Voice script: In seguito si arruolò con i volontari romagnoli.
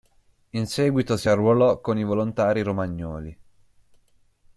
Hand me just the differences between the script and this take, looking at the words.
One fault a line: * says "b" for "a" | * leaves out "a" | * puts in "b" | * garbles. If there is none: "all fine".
all fine